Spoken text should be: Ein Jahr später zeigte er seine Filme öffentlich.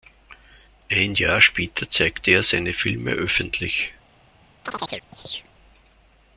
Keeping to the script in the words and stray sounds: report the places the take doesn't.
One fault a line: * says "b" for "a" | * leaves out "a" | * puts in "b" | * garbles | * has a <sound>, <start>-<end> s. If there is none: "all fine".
* has a chirp, 4.6-5.5 s